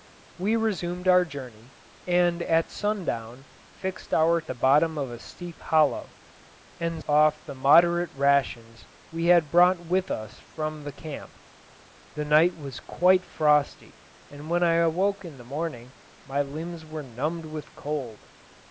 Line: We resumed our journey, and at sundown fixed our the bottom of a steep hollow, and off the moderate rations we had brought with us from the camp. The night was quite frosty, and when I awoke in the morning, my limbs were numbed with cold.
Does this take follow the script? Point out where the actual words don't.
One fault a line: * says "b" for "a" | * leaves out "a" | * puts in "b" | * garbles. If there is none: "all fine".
all fine